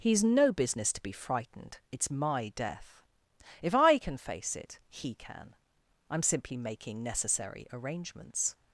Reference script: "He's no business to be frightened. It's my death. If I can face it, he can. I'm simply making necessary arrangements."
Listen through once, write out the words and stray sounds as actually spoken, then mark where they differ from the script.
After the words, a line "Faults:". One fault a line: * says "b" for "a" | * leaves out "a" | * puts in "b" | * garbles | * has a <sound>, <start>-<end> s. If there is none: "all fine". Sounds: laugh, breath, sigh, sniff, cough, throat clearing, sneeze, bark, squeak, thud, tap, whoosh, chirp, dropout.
"He's no business to be frightened. It's my death. If I can face it, he can. I'm simply making necessary arrangements."
Faults:
all fine